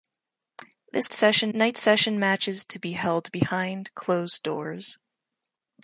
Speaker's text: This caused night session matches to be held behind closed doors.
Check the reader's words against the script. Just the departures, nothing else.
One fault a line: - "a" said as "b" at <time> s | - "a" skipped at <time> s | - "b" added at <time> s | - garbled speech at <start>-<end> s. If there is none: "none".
- "caused" said as "session" at 1.1 s